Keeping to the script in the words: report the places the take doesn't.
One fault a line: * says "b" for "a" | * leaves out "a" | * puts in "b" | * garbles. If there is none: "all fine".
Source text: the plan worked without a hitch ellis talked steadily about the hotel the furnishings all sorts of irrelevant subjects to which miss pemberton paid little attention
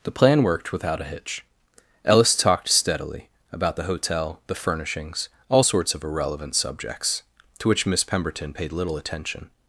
all fine